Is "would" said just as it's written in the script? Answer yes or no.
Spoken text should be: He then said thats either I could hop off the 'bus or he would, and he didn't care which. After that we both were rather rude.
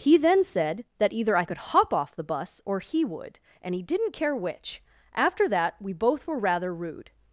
yes